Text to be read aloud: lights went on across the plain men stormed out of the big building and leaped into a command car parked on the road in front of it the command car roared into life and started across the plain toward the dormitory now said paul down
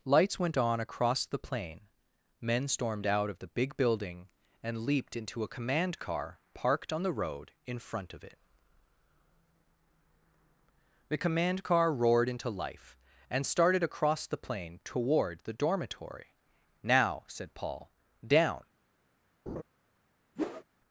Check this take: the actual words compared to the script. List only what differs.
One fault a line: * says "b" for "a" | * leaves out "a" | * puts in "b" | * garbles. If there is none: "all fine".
all fine